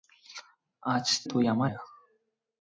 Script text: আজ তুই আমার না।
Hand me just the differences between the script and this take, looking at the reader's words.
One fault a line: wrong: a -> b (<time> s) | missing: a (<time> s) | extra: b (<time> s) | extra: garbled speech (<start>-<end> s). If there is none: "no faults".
no faults